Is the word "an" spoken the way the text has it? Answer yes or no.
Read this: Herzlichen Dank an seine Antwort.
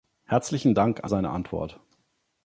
yes